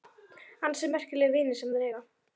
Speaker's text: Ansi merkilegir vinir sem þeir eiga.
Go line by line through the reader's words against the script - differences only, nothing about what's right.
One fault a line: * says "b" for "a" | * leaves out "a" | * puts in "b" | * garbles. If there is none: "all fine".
all fine